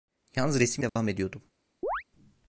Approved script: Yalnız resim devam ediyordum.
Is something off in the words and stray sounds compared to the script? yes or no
yes